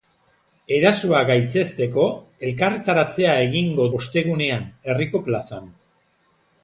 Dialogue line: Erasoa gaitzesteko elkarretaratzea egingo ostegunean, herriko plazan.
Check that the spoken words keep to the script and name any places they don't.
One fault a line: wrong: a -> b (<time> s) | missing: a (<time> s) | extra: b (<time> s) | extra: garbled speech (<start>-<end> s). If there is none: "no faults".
no faults